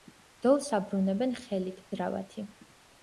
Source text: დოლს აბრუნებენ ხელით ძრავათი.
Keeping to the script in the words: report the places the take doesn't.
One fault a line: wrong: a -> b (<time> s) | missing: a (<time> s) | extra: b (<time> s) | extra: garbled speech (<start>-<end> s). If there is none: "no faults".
no faults